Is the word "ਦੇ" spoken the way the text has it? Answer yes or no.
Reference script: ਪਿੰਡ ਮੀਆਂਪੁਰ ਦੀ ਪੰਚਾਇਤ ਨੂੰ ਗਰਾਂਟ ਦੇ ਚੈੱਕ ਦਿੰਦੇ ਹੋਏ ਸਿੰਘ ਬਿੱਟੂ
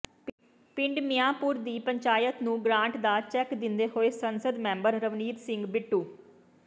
no